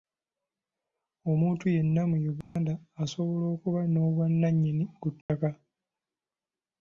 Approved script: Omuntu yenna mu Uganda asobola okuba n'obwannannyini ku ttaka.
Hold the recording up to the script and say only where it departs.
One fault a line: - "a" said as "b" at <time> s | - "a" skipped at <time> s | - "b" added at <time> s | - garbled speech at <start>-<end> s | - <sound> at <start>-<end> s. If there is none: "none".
- dropout at 2.4-2.6 s
- dropout at 5.2-5.3 s